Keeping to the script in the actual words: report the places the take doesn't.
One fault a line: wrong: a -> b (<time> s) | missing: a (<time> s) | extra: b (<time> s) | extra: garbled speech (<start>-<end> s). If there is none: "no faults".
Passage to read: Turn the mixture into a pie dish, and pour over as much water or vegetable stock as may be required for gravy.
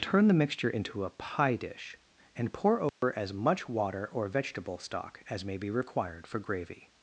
no faults